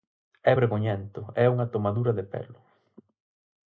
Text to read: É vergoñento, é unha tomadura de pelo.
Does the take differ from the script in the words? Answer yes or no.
no